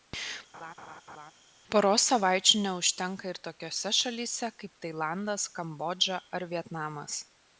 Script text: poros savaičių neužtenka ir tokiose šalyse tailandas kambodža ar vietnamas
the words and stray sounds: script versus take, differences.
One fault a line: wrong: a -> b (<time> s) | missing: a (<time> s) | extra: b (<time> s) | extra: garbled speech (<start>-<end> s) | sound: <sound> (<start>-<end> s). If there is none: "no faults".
sound: laugh (0.5-1.3 s)
extra: kaip (4.6 s)